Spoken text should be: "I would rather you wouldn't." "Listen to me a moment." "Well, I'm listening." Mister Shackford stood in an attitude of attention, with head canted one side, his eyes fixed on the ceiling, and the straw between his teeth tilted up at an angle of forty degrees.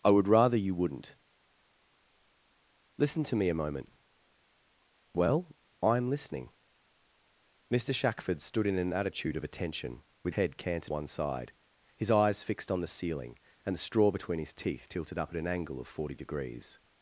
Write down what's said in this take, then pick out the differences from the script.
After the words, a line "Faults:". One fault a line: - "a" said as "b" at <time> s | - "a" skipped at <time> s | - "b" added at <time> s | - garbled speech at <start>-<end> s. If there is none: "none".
"I would rather you wouldn't." "Listen to me a moment." "Well, I'm listening." Mister Shackford stood in an attitude of attention, with head canted one side, his eyes fixed on the ceiling, and the straw between his teeth tilted up at an angle of forty degrees.
Faults:
none